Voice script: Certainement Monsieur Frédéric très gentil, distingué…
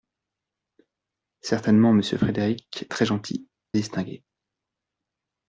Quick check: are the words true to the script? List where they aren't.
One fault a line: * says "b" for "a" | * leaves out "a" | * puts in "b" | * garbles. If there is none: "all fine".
all fine